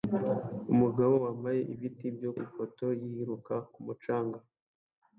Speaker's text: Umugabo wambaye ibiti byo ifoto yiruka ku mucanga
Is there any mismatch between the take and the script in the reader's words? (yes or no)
no